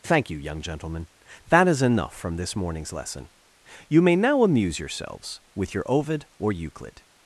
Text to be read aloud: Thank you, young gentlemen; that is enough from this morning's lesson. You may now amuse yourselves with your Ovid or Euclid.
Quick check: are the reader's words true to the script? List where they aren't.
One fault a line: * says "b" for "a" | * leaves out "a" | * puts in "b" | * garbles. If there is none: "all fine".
all fine